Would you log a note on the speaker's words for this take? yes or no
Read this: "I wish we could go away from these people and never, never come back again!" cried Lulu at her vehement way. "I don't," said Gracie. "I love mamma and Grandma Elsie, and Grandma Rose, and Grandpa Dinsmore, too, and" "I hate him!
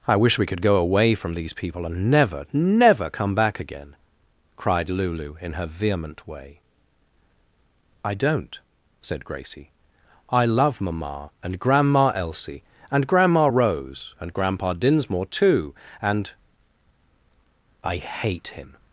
yes